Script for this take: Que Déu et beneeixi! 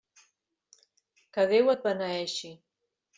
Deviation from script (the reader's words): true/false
false